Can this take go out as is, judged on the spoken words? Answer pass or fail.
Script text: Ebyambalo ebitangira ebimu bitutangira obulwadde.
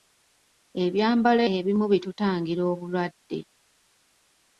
fail